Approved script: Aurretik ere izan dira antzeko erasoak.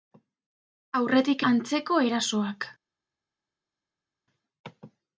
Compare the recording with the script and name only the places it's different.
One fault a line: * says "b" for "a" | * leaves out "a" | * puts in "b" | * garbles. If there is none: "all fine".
* leaves out "ere izan dira"